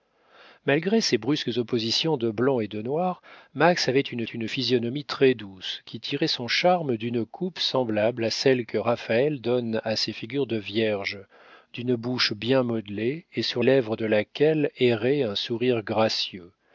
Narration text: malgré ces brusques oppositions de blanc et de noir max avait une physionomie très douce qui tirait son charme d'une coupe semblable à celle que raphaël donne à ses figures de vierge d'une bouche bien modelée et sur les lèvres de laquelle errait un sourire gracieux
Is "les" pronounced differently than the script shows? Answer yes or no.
yes